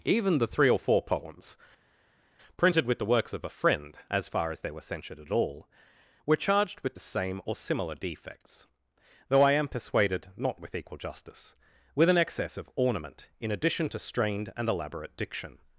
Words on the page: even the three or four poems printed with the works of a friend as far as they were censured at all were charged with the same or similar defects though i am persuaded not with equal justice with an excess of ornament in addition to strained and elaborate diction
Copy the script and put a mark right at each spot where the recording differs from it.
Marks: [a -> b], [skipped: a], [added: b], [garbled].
even the three or four poems printed with the works of a friend as far as they were censured at all were charged with the same or similar defects though i am persuaded not with equal justice with an excess of ornament in addition to strained and elaborate diction